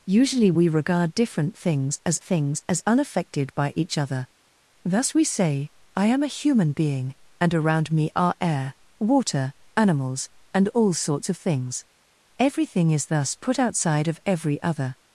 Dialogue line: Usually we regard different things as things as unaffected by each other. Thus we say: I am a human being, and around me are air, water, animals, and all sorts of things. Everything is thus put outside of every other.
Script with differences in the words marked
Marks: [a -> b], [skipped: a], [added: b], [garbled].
Usually we regard different things as things as unaffected by each other. Thus we say: I am a human being, and around me are air, water, animals, and all sorts of things. Everything is thus put outside of every other.